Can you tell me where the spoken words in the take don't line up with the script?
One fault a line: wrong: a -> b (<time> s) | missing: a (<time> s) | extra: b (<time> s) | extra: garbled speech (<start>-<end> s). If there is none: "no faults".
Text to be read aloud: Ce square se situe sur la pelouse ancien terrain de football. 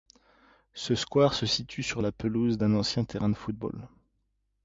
extra: d'un (2.6 s)